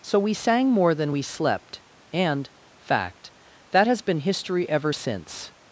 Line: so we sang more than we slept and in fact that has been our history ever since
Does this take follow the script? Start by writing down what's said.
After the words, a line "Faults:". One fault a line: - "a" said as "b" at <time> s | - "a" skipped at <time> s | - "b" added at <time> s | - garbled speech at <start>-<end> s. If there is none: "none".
so we sang more than we slept and fact that has been history ever since
Faults:
- "in" skipped at 2.5 s
- "our" skipped at 4.2 s